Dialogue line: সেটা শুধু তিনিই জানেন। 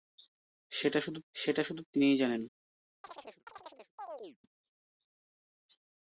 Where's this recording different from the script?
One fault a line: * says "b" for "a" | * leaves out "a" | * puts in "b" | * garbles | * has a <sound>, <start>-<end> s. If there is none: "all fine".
* puts in "সেটা শুধু"
* has a chirp, 3.0-4.4 s